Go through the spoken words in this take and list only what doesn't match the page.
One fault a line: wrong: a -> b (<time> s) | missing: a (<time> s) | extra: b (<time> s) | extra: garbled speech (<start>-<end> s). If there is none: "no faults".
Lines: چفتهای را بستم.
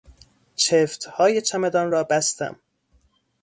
extra: چمدان (1.4 s)